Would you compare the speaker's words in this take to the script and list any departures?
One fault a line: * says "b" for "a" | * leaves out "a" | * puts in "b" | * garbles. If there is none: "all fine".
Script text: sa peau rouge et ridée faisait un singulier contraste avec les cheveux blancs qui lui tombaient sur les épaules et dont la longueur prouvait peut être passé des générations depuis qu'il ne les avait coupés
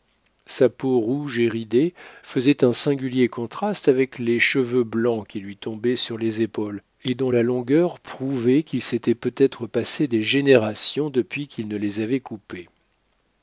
* puts in "qu'il s'était"